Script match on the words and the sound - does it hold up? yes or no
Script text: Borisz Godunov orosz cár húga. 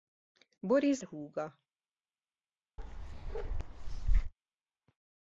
no